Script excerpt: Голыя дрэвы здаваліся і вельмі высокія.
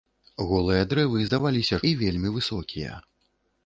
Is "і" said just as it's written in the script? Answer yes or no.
yes